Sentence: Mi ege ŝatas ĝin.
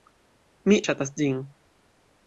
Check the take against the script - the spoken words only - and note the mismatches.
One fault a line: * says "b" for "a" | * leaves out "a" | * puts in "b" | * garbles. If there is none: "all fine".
* leaves out "ege"